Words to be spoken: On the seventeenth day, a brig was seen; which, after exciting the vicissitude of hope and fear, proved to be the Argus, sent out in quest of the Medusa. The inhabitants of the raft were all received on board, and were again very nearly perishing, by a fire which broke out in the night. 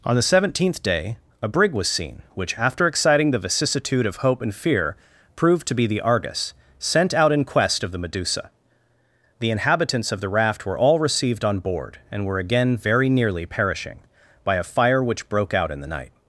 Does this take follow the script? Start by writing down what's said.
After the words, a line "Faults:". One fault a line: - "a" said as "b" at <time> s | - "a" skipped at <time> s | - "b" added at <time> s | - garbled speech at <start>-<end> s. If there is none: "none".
On the seventeenth day, a brig was seen; which, after exciting the vicissitude of hope and fear, proved to be the Argus, sent out in quest of the Medusa. The inhabitants of the raft were all received on board, and were again very nearly perishing, by a fire which broke out in the night.
Faults:
none